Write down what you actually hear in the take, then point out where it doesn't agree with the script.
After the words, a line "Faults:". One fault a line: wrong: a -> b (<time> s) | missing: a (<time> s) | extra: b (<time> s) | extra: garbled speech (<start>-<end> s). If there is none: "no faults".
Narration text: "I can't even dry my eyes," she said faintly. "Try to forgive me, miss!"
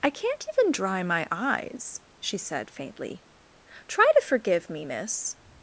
"I can't even dry my eyes," she said faintly. "Try to forgive me, miss!"
Faults:
no faults